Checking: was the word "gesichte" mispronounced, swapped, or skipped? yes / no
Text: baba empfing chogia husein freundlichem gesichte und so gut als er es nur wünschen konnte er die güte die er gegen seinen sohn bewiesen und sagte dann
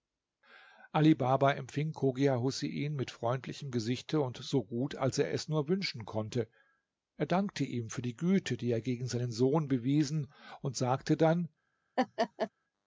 no